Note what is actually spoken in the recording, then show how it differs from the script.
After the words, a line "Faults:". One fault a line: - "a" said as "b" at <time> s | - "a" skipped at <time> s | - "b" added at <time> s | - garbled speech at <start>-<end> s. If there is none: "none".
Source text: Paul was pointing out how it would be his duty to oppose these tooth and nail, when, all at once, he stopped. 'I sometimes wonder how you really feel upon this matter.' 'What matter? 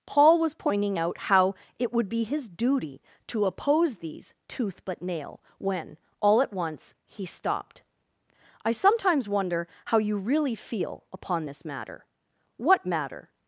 Paul was pointing out how it would be his duty to oppose these tooth but nail, when, all at once, he stopped. 'I sometimes wonder how you really feel upon this matter.' 'What matter?
Faults:
- "and" said as "but" at 4.9 s